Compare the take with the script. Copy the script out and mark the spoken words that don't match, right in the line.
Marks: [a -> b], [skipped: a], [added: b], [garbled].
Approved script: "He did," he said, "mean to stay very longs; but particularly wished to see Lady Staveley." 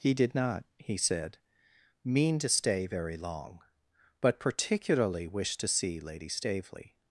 "He did," [added: not] he said, "mean to stay very [longs; -> long] but particularly wished to see Lady Staveley."